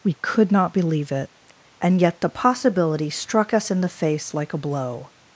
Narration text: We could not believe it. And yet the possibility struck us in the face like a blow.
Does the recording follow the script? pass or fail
pass